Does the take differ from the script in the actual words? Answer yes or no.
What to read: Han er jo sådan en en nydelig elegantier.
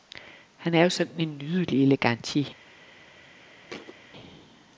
yes